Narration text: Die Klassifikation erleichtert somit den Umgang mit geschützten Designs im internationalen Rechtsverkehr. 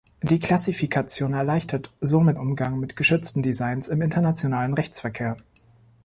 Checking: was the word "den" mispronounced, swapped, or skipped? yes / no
yes